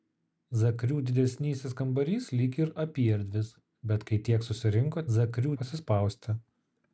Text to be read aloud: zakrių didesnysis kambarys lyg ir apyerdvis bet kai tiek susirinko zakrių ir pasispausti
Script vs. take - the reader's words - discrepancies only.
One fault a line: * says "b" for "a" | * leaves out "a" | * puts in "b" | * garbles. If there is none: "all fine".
all fine